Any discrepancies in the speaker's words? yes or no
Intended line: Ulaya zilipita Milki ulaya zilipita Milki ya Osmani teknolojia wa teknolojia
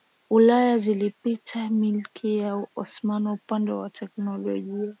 yes